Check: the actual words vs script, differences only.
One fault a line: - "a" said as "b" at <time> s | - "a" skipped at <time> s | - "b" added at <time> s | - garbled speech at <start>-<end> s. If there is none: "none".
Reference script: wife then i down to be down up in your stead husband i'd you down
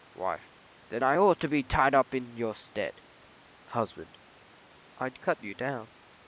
- "down" said as "ought" at 1.2 s
- "down" said as "tied" at 1.6 s
- "cut" added at 5.2 s